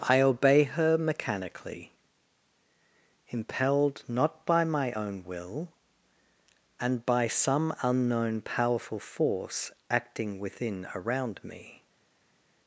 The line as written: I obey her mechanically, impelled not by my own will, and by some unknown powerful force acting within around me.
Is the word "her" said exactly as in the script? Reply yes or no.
yes